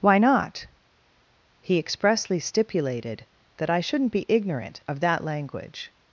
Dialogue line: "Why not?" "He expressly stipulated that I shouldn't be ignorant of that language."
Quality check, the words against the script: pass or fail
pass